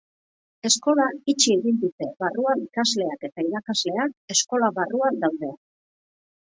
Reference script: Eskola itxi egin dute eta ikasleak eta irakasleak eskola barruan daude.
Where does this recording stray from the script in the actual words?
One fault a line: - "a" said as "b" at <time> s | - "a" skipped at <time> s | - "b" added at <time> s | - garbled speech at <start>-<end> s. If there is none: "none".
- "eta" said as "barruan" at 2.2 s